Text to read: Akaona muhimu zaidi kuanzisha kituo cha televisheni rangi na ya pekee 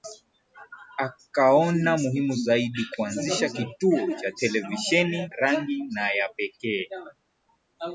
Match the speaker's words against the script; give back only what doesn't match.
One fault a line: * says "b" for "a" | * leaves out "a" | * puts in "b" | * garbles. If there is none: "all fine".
all fine